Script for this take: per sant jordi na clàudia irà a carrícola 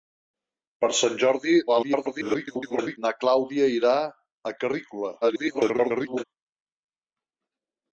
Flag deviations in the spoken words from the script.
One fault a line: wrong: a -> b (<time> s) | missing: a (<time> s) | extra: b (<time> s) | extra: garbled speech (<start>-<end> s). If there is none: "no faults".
extra: garbled speech (1.7-3.0 s)
extra: garbled speech (5.2-6.2 s)